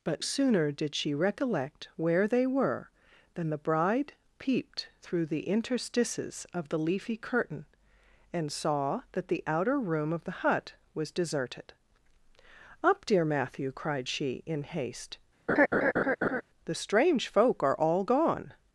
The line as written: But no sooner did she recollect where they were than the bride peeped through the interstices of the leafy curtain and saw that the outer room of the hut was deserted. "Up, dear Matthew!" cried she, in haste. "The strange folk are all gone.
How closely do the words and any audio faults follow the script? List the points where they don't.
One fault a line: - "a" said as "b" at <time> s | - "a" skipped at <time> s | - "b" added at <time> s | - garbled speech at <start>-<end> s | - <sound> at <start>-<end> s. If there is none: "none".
- "no" skipped at 0.2 s
- laugh at 15.5-16.4 s